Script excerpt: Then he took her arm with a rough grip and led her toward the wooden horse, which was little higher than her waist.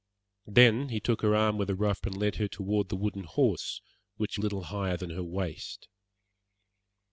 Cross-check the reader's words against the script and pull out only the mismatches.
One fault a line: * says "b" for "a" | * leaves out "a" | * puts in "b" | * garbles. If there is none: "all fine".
* leaves out "grip"
* leaves out "was"